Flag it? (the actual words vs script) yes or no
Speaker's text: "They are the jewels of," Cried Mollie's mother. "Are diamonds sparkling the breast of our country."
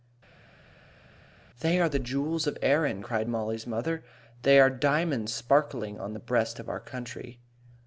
yes